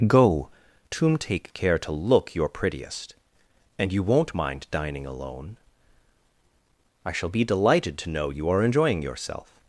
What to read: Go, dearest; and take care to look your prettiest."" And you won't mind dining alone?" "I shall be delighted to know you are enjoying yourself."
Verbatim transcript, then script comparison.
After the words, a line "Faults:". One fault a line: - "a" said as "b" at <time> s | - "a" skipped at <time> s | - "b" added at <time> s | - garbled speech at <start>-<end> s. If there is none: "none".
Go, tomb take care to look your prettiest."" And you won't mind dining alone?" "I shall be delighted to know you are enjoying yourself."
Faults:
- "dearest and" said as "tomb" at 0.9 s